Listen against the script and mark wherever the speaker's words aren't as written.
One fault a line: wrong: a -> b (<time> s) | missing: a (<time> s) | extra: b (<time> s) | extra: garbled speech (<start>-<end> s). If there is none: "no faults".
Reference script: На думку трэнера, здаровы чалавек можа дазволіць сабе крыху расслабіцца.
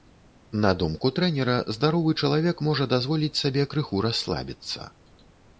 no faults